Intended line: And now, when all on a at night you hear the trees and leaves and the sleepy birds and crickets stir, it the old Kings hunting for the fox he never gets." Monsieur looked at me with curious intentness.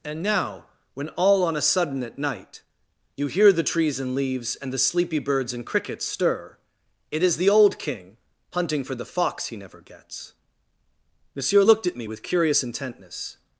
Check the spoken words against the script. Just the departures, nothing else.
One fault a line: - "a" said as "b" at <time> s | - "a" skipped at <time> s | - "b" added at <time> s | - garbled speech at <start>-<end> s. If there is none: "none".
- "sudden" added at 1.6 s
- "is" added at 7.2 s
- "Kings" said as "King" at 7.8 s